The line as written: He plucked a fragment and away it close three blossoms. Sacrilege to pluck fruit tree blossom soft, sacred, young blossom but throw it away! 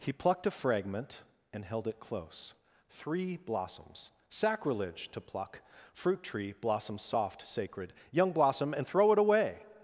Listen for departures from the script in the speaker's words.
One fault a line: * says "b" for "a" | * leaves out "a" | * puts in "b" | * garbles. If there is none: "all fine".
* says "held" for "away"
* says "and" for "but"